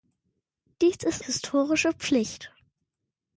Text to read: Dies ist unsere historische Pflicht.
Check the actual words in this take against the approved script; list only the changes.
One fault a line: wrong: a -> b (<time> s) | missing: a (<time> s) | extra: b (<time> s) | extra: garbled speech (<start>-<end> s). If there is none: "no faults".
missing: unsere (1.2 s)